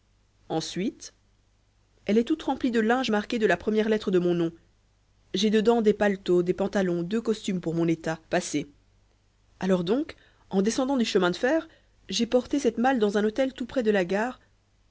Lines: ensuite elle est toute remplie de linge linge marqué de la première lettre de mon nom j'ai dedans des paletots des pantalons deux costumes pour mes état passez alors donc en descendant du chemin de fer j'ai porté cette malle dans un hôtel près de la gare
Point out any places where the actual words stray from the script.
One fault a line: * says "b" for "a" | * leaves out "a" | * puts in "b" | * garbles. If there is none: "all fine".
* leaves out "linge"
* says "mon" for "mes"
* puts in "tout"